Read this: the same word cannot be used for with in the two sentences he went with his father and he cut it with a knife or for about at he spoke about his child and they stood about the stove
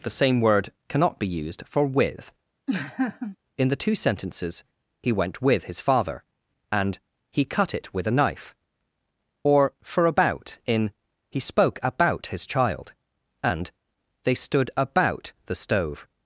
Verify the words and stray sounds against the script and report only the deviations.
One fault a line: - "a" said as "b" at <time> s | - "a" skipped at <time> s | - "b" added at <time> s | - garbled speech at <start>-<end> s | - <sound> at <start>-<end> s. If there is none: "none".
- laugh at 2.7-3.4 s
- "at" said as "in" at 10.6 s